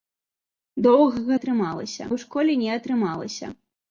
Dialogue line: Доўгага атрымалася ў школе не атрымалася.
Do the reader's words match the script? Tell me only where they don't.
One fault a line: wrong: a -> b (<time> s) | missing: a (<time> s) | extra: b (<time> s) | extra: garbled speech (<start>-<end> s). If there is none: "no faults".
no faults